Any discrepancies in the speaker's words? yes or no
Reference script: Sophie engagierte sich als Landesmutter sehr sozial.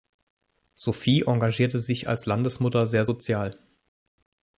no